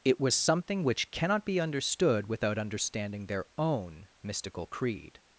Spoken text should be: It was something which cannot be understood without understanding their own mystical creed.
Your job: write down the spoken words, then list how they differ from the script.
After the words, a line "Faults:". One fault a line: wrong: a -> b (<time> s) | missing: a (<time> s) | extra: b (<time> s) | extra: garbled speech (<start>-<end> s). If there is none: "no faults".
It was something which cannot be understood without understanding their own mystical creed.
Faults:
no faults